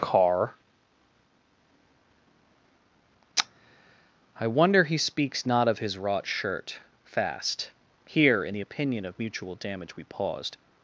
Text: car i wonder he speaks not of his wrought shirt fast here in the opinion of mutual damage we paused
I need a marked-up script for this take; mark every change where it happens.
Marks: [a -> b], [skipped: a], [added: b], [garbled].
car i wonder he speaks not of his wrought shirt fast here in the opinion of mutual damage we paused